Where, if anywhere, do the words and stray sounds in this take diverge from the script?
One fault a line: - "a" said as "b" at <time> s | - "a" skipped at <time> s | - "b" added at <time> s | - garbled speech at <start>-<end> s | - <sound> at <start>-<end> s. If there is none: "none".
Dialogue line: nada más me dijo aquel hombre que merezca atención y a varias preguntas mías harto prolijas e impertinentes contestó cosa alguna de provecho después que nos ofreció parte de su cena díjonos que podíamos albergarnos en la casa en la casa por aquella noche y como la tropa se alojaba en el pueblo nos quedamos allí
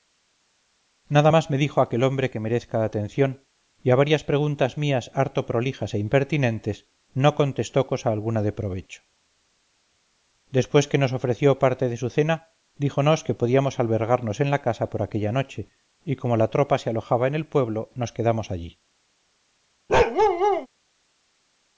- "no" added at 7.2 s
- "en la casa" skipped at 14.9 s
- bark at 19.9-20.7 s